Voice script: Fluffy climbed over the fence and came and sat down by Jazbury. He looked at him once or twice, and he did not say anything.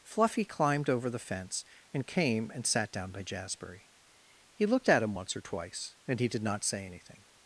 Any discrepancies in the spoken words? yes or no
no